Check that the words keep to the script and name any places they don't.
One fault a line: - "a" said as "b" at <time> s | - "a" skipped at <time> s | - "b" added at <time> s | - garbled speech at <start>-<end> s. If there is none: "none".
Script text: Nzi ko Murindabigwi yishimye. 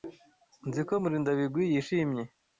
none